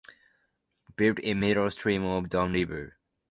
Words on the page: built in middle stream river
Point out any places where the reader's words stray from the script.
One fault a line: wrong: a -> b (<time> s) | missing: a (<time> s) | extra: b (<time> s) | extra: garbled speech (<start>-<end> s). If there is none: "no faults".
extra: of don (2.0 s)